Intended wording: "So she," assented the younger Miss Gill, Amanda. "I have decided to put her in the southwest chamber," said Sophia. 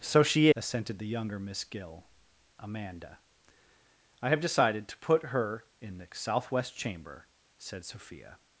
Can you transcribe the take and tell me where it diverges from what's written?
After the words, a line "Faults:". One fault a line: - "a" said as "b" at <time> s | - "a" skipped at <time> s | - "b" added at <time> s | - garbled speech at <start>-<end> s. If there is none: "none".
"So she," assented the younger Miss Gill, Amanda. "I have decided to put her in the southwest chamber," said Sophia.
Faults:
none